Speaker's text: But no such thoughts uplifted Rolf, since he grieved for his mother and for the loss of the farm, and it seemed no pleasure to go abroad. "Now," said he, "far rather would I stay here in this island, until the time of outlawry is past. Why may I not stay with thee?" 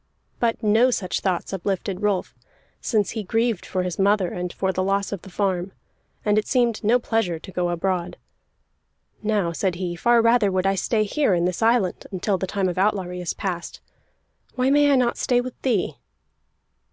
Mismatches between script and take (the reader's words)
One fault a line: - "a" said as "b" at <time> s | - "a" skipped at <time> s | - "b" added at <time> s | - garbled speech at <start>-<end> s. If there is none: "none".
none